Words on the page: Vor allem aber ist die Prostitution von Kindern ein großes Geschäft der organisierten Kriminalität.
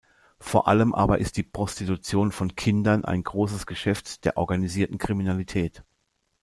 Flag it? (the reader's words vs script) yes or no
no